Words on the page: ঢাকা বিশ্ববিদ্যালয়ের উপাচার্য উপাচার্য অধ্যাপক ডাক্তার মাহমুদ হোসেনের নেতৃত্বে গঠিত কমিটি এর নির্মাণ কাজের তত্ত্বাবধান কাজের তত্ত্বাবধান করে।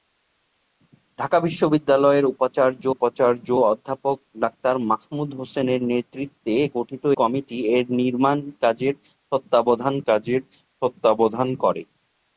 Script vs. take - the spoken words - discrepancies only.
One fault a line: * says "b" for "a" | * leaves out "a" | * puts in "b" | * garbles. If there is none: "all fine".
all fine